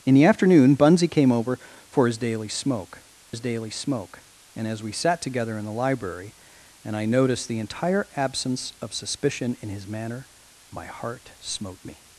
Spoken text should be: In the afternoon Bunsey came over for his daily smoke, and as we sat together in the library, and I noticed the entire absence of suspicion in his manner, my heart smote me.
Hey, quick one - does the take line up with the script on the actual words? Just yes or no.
no